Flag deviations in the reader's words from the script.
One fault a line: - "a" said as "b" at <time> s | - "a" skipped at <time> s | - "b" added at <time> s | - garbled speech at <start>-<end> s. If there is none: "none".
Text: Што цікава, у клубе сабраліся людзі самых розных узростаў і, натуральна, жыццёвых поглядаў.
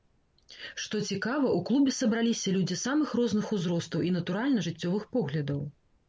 none